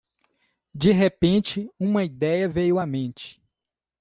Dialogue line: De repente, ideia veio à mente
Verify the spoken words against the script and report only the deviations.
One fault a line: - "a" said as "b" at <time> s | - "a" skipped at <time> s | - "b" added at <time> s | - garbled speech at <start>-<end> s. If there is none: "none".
- "uma" added at 1.8 s